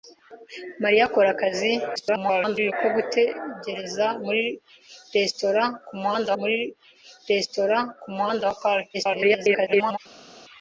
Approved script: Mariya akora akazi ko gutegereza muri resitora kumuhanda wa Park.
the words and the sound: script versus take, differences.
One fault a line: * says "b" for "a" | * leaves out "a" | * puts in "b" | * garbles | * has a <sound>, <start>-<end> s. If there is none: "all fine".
* garbles
* puts in "muri resitora kumuhanda"
* garbles